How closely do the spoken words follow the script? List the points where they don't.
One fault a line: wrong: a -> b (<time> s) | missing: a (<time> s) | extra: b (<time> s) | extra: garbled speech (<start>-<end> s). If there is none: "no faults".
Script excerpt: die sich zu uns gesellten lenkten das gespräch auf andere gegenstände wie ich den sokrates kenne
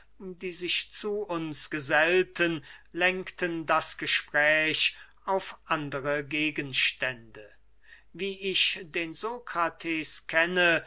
no faults